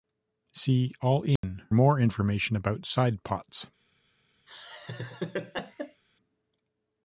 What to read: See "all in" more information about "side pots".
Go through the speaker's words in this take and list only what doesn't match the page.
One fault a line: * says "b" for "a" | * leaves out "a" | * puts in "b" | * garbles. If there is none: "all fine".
all fine